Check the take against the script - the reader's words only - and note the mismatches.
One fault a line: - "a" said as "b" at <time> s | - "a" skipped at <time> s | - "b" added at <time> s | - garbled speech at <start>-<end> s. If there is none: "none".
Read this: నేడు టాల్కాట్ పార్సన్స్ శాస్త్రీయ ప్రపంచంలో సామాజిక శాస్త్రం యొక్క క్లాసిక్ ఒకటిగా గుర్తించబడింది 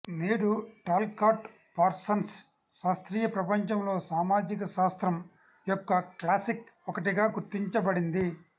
none